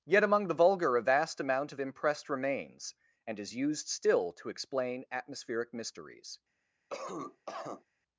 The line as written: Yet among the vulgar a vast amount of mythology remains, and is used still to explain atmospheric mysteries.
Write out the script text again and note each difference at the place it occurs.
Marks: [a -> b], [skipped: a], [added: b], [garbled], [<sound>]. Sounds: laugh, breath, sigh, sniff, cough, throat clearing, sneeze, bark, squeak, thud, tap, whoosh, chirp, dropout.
Yet among the vulgar a vast amount of [mythology -> impressed] remains, and is used still to explain atmospheric mysteries. [cough]